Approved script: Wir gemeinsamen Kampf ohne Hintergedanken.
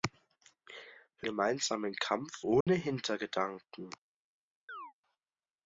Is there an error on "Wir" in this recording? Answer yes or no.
no